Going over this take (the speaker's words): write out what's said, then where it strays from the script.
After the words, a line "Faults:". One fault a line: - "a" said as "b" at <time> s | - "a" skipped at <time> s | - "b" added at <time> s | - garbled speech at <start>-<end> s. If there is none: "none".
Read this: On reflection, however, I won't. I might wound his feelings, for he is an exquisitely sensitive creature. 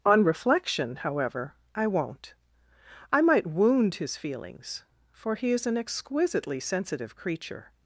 On reflection, however, I won't. I might wound his feelings, for he is an exquisitely sensitive creature.
Faults:
none